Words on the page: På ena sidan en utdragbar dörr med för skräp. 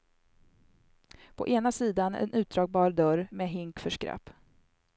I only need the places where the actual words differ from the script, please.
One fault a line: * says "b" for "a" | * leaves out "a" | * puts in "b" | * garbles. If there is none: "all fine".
* puts in "hink"